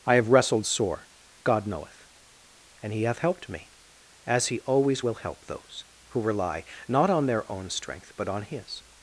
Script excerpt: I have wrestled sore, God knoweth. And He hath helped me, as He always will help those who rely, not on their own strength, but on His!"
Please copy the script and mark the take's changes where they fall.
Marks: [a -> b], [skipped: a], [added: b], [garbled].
I have wrestled sore, God knoweth. And He hath helped me, as He always will help those who rely, not on their own strength, but on His!"